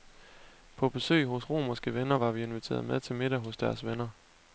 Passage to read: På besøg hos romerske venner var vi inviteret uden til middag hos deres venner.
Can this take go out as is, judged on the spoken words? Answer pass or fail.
fail